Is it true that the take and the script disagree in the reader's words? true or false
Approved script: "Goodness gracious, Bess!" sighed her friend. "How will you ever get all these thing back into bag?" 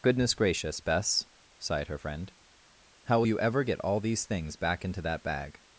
true